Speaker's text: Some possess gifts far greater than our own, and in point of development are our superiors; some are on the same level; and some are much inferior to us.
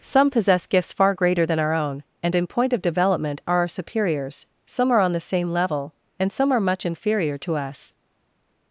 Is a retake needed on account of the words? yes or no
no